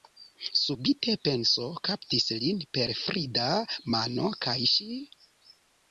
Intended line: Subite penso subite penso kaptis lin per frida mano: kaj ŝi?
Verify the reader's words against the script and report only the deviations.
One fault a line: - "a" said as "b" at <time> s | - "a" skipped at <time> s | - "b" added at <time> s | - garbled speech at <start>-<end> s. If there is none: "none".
- "subite penso" skipped at 1.7 s